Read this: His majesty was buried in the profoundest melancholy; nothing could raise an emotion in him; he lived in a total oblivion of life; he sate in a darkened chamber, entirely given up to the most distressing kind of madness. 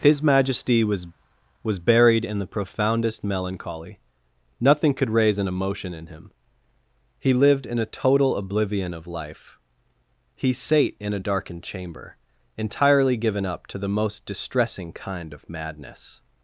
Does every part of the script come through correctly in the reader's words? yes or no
no